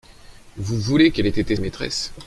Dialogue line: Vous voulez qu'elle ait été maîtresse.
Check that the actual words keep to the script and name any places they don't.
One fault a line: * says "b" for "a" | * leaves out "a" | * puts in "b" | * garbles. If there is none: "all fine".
all fine